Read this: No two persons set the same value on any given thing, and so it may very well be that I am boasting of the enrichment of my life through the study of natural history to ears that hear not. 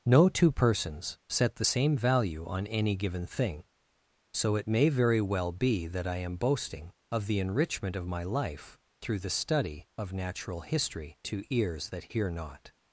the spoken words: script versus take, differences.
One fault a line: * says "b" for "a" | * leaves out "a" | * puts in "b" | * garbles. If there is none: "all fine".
* leaves out "and"